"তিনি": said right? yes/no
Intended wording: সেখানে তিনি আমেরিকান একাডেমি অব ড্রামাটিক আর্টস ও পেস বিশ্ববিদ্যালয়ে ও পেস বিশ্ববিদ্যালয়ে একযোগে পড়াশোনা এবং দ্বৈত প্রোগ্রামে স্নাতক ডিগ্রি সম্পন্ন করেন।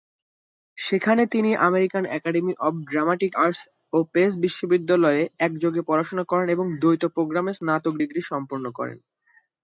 yes